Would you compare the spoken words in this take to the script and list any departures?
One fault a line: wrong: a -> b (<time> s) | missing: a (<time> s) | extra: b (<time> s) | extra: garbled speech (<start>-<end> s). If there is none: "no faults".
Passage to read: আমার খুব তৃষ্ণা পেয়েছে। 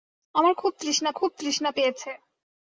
extra: খুব তৃষ্ণা (1.1 s)